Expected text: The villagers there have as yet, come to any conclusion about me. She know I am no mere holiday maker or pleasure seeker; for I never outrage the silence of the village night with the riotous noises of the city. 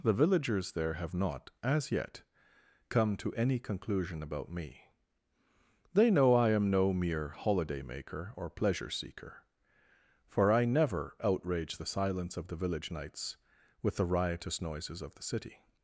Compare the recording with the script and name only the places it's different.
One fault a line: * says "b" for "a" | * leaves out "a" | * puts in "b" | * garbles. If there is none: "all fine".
* puts in "not"
* says "They" for "She"
* says "nights" for "night"